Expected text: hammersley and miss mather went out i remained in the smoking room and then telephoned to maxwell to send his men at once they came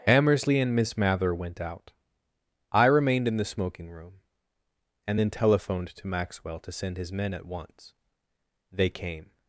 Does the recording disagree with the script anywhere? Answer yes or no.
no